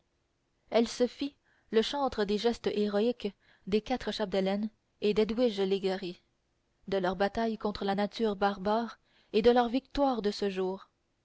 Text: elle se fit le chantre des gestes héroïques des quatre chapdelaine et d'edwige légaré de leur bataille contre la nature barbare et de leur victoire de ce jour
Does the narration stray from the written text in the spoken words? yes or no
no